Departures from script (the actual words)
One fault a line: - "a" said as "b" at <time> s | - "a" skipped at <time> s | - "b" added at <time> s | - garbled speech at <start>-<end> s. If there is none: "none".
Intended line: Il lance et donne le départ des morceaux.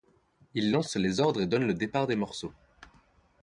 - "les ordres" added at 0.9 s